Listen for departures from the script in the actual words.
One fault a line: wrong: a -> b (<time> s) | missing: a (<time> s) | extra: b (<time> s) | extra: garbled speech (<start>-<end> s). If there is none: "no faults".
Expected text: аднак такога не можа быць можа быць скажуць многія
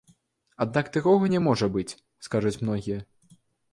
missing: можа быць (2.0 s)